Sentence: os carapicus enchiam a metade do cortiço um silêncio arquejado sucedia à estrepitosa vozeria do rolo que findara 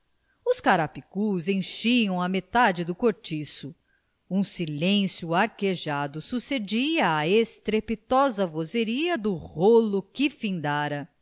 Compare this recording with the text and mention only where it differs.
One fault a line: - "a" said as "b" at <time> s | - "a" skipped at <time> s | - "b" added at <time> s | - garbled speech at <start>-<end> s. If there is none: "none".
none